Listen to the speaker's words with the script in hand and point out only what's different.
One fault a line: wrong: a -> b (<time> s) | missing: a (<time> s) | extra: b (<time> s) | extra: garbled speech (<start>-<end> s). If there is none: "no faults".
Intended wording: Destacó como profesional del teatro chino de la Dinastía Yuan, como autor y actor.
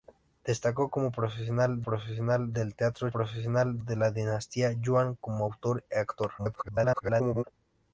extra: profesional (1.8 s)
wrong: chino -> profesional (3.1 s)
extra: garbled speech (6.4-7.4 s)